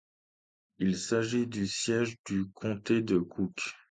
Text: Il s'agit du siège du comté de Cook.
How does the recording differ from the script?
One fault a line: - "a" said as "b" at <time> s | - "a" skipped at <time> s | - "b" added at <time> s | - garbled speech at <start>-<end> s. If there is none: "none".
none